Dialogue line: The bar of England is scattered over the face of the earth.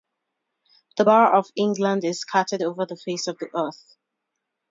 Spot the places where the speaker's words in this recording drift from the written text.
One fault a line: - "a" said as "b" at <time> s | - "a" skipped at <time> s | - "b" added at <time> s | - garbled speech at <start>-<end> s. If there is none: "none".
none